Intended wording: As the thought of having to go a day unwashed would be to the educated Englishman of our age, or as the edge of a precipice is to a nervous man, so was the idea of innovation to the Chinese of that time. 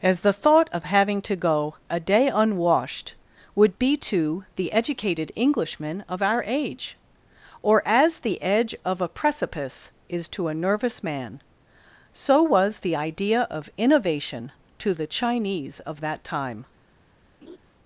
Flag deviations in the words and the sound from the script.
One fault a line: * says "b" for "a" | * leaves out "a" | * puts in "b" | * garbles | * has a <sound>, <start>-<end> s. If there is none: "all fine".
* has a laugh, 17.4-17.6 s